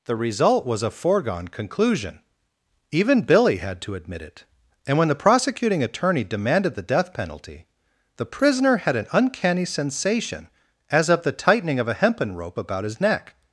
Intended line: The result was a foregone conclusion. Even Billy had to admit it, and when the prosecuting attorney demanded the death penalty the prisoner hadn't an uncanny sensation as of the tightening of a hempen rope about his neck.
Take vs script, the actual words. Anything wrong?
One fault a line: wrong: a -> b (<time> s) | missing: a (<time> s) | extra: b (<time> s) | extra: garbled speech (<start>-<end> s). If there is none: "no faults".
wrong: hadn't -> had (8.8 s)